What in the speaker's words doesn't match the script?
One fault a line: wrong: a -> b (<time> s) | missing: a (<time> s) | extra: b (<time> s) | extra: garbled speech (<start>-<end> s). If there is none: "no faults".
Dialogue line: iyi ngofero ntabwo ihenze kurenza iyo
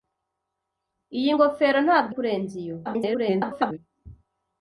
missing: ihenze (2.1 s)
extra: garbled speech (2.9-3.8 s)